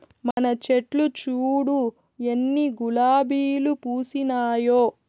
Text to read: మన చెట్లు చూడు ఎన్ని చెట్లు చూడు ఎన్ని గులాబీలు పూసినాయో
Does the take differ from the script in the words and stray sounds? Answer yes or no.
yes